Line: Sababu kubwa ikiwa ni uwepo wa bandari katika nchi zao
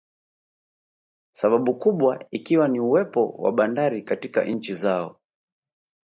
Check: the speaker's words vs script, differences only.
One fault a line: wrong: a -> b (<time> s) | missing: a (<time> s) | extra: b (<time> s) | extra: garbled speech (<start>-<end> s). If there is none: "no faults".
no faults